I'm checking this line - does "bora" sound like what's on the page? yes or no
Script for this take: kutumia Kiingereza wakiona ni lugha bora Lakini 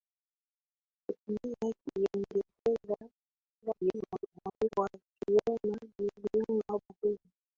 no